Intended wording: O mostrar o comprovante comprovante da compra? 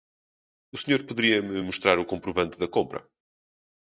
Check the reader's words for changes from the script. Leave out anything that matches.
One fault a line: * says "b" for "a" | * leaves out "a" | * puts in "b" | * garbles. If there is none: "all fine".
* puts in "senhor poderia me"
* leaves out "comprovante"